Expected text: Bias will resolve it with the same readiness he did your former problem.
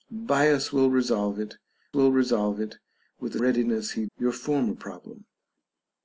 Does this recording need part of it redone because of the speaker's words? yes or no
yes